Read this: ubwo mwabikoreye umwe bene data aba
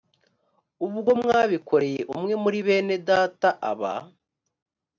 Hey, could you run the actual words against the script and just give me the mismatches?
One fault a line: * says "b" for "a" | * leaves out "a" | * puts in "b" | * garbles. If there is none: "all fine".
* puts in "muri"